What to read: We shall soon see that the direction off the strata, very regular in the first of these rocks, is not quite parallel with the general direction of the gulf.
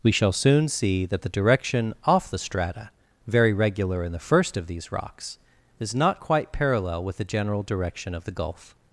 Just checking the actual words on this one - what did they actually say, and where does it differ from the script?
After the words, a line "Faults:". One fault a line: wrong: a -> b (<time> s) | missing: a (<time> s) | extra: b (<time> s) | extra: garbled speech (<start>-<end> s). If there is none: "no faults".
We shall soon see that the direction off the strata, very regular in the first of these rocks, is not quite parallel with the general direction of the gulf.
Faults:
no faults